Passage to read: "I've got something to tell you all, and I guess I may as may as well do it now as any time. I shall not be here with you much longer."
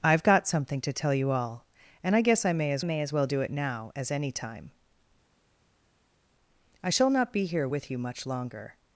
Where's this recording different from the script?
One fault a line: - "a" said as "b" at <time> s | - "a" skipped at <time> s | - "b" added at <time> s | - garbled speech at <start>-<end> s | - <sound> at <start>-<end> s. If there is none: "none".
none